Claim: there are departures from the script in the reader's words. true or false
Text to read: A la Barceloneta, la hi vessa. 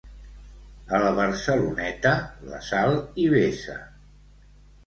true